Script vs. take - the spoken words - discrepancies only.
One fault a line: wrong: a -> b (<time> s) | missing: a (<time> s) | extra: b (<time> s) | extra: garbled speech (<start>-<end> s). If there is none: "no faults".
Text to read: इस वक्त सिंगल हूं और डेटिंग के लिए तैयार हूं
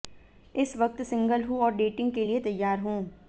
no faults